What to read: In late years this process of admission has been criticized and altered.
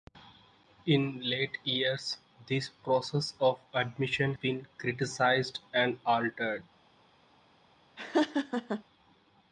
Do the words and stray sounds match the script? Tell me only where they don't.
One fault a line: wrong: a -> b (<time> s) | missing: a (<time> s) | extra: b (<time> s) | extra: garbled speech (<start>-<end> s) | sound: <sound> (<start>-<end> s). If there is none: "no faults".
missing: has (4.3 s)
sound: laugh (8.0-8.8 s)